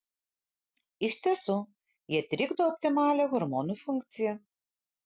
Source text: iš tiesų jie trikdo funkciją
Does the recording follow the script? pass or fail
fail